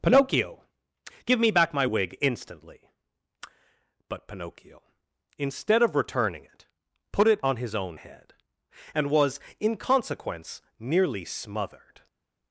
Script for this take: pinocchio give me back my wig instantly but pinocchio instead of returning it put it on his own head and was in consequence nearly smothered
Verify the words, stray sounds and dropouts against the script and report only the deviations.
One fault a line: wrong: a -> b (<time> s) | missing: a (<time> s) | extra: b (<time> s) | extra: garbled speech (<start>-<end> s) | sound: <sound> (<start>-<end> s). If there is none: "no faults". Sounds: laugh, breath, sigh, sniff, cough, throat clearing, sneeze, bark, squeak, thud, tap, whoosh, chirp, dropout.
no faults